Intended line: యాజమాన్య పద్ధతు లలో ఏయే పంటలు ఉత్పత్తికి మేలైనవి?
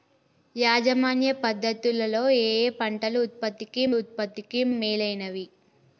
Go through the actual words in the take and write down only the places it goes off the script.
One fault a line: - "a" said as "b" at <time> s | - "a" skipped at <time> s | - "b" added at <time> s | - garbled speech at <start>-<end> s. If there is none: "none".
- "ఉత్పత్తికి" added at 3.9 s